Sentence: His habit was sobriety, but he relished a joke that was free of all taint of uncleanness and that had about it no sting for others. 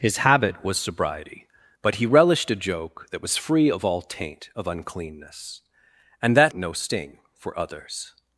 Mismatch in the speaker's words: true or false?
true